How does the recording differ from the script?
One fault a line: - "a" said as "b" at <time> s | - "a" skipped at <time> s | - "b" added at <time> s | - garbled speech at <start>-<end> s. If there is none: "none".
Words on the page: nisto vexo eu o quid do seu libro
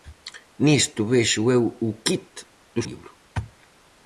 - "seu" skipped at 2.8 s